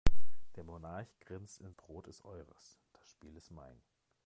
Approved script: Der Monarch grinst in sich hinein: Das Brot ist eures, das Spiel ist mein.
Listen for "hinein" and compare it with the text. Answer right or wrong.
wrong